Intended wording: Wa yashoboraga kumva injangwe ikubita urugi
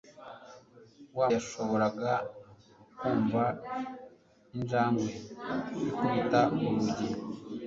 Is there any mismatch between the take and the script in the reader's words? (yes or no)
no